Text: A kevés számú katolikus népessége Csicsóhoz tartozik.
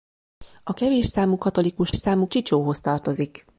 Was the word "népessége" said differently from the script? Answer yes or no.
yes